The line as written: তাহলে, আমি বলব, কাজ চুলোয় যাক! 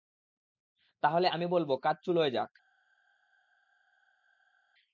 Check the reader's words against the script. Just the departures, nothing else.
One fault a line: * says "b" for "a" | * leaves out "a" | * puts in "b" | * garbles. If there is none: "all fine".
all fine